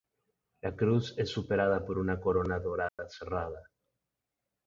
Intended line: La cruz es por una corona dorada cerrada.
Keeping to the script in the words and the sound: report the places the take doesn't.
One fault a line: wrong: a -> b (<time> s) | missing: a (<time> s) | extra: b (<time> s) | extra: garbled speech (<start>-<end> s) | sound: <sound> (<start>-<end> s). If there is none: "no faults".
extra: superada (1.3 s)
sound: dropout (2.9-3.0 s)